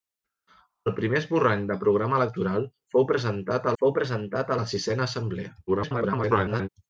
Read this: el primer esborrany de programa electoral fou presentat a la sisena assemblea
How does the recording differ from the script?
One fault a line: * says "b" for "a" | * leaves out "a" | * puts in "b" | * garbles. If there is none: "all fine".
* puts in "fou presentat"
* garbles